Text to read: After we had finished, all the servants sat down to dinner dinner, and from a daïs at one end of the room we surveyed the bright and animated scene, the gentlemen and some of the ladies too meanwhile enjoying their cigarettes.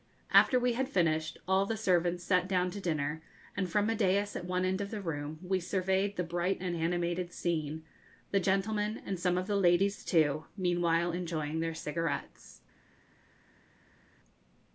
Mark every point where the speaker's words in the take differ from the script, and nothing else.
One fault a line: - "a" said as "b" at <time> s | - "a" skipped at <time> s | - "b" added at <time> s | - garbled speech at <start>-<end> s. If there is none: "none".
- "dinner" skipped at 3.2 s